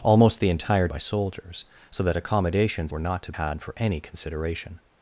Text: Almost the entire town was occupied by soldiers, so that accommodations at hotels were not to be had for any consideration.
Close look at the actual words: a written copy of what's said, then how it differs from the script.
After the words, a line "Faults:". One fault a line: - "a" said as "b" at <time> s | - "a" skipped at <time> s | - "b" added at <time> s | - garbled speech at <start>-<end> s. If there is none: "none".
Almost the entire by soldiers, so that accommodations were not to had for any consideration.
Faults:
- "town was occupied" skipped at 0.9 s
- "at hotels" skipped at 2.9 s
- "be" skipped at 3.3 s